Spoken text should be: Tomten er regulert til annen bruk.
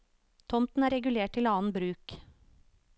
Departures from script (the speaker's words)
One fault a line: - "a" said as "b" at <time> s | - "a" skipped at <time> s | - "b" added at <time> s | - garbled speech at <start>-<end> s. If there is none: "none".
none